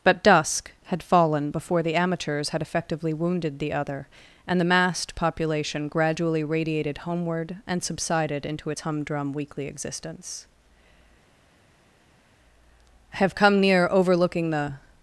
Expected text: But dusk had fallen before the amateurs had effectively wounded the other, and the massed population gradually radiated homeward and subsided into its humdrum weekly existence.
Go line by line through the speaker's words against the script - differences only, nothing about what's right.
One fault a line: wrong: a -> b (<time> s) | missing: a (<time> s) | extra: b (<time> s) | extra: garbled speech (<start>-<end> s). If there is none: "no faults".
extra: I have come near overlooking the (13.1 s)